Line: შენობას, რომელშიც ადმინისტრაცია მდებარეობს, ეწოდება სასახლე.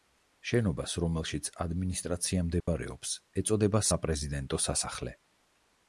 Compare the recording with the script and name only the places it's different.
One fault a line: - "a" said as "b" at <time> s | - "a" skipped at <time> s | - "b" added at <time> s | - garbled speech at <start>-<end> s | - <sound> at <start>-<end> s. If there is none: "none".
- dropout at 2.6-2.7 s
- "საპრეზიდენტო" added at 3.9 s